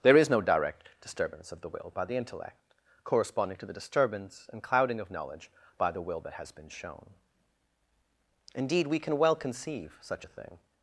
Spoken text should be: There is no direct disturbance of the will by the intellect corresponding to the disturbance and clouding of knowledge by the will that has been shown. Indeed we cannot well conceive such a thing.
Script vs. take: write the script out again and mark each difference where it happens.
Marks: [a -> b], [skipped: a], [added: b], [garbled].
There is no direct disturbance of the will by the intellect corresponding to the disturbance and clouding of knowledge by the will that has been shown. Indeed we [cannot -> can] well conceive such a thing.